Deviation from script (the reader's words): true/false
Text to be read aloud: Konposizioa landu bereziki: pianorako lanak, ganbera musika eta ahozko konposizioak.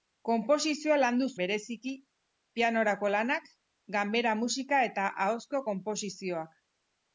false